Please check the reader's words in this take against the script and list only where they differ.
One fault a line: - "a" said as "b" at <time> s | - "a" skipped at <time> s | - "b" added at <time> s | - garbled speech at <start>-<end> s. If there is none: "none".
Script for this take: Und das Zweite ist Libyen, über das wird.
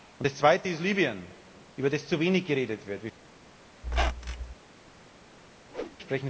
- "zu wenig geredet" added at 2.1 s